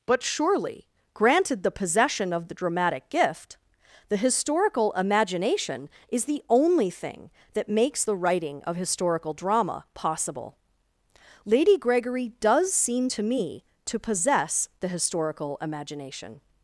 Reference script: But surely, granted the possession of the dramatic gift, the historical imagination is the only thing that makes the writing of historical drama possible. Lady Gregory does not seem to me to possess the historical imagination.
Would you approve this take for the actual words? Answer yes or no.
no